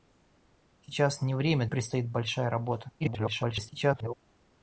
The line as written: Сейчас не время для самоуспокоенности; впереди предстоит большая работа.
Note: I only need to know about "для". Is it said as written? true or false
false